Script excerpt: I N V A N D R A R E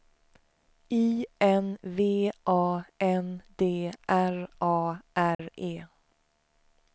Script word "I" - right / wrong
right